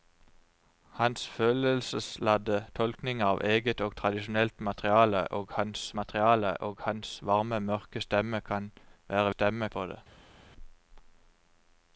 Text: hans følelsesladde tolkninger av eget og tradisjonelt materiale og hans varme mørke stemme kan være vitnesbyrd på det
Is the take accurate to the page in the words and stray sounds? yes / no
no